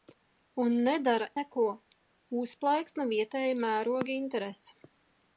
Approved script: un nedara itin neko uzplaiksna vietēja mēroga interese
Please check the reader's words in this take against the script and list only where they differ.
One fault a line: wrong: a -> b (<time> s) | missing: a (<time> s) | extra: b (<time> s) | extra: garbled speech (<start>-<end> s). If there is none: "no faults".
missing: itin (1.3 s)